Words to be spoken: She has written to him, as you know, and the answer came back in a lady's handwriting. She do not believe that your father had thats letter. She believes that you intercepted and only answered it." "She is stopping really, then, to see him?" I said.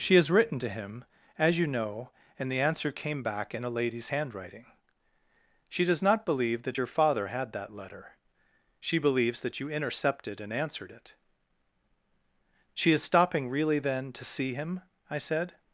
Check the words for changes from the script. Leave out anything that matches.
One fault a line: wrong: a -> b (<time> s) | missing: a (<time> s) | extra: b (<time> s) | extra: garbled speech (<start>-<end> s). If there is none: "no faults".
wrong: do -> does (5.8 s)
wrong: thats -> that (7.5 s)
missing: only (10.5 s)